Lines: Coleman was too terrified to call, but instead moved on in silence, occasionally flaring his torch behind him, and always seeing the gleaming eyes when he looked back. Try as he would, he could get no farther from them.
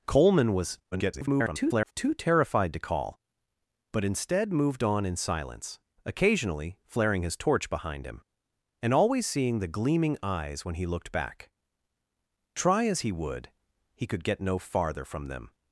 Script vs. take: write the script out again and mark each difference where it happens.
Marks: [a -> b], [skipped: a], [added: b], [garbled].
Coleman was [garbled] too terrified to call, but instead moved on in silence, occasionally flaring his torch behind him, and always seeing the gleaming eyes when he looked back. Try as he would, he could get no farther from them.